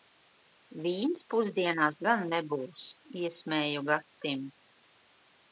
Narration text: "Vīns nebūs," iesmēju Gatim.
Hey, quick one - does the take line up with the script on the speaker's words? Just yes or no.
no